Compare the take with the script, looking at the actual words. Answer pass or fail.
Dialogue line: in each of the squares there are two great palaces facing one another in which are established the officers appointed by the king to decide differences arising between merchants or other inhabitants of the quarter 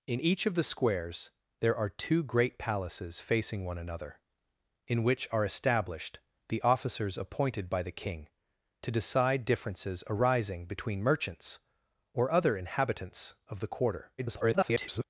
fail